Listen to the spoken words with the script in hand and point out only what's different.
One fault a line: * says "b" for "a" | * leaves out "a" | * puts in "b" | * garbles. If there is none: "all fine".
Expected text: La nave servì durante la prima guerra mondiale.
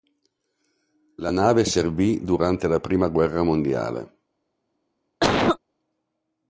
all fine